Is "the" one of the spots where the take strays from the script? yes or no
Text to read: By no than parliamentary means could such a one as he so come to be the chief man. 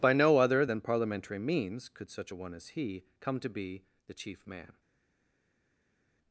no